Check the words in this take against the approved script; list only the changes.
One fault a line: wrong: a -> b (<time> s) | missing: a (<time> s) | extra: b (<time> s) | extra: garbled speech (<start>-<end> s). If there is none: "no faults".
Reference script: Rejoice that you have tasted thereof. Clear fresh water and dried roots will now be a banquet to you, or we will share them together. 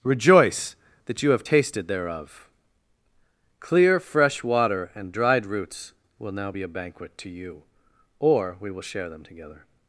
no faults